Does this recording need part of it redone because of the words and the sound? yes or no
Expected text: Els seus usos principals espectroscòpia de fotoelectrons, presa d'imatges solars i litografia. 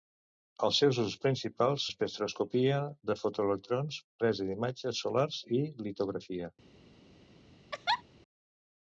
yes